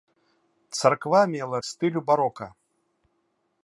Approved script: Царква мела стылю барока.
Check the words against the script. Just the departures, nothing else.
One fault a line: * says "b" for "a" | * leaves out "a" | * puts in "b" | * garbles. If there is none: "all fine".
all fine